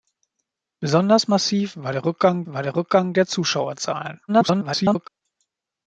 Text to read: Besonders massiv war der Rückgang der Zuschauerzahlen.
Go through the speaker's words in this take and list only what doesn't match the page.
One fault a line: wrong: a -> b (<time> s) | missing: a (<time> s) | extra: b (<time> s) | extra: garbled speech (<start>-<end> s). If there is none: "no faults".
extra: war der Rückgang (2.5 s)
extra: garbled speech (4.3-5.1 s)